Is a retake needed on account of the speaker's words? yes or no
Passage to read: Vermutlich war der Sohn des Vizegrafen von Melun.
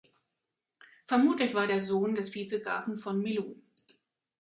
no